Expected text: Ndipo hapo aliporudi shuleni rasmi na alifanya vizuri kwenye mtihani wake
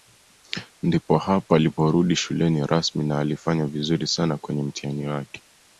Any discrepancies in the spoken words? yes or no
yes